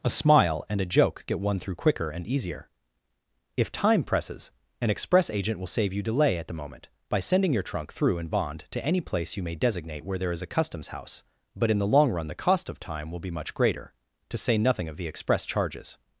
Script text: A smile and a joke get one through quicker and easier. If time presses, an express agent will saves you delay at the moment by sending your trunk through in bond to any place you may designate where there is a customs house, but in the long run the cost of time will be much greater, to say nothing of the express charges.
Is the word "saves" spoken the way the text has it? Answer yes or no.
no